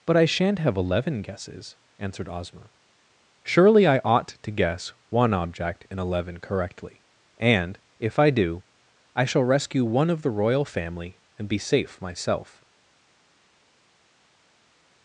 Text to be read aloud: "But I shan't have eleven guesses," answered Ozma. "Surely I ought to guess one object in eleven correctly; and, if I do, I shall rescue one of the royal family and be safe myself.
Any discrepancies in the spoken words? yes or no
no